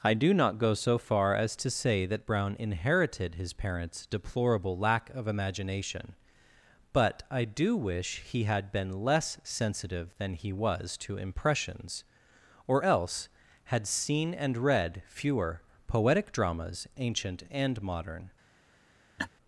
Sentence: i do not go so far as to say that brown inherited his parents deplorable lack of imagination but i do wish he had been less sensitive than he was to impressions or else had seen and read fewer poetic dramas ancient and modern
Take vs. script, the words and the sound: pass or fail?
fail